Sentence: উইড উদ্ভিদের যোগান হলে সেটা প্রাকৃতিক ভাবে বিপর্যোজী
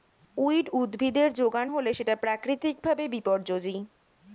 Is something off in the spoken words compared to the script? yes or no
no